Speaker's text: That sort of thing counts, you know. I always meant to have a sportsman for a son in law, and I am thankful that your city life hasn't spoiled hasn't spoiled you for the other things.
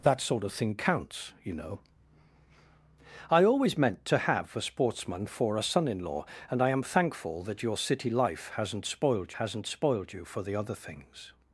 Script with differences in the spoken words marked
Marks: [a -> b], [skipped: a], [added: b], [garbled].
That sort of thing counts, you know. I always meant to have a sportsman for a son in law, and I am thankful that your city life hasn't spoiled hasn't spoiled you for the other things.